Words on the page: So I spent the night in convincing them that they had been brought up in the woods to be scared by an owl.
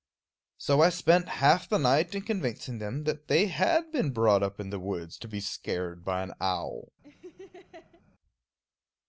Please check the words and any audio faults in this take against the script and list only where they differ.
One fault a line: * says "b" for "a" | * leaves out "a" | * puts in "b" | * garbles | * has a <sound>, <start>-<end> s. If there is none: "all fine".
* puts in "half"
* has a laugh, 7.0-8.0 s